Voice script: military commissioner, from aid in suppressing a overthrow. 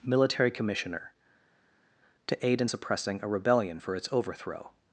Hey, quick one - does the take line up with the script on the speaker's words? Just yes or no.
no